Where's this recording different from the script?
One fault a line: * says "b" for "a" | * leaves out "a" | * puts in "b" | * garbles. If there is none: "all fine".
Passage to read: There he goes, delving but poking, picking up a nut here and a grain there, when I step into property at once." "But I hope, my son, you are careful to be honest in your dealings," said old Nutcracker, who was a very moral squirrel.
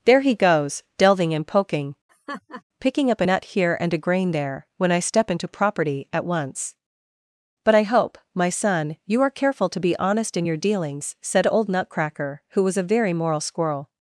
* says "and" for "but"